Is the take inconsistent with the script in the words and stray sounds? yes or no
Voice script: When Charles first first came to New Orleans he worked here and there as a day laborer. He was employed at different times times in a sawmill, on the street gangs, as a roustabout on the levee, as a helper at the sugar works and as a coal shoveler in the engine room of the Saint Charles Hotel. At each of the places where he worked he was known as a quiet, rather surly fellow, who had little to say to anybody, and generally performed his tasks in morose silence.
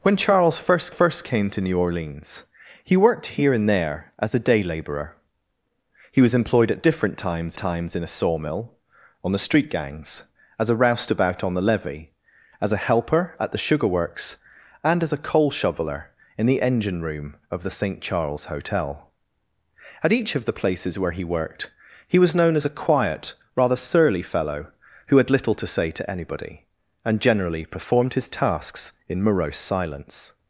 no